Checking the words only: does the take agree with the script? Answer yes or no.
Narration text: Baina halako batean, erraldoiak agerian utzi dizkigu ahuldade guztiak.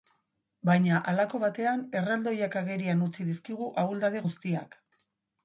yes